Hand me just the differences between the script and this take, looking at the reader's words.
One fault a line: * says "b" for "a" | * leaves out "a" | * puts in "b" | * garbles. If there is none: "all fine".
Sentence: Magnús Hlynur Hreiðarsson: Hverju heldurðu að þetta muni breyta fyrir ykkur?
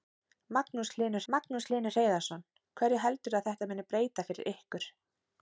* puts in "magnús Hlynur"